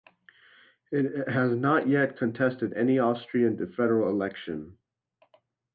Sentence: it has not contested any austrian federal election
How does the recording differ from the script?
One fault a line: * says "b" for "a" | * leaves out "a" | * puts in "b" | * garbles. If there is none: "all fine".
* puts in "yet"